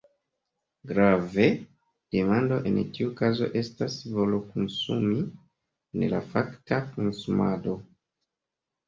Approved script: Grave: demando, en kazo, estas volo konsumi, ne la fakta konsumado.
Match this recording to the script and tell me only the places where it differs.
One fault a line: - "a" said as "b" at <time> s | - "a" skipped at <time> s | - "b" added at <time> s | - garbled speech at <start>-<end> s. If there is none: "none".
- "tiu" added at 3.0 s